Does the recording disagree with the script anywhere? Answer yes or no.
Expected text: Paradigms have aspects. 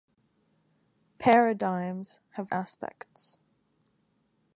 no